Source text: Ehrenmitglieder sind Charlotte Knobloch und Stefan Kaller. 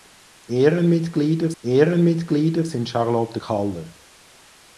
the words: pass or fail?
fail